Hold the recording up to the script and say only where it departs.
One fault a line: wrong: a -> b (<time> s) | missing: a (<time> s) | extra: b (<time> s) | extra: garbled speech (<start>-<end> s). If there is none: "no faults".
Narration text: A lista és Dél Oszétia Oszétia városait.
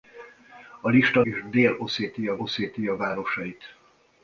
no faults